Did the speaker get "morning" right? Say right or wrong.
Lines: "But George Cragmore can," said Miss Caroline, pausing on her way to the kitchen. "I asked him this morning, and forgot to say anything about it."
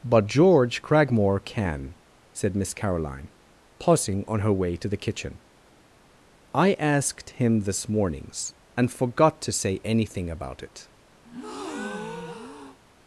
wrong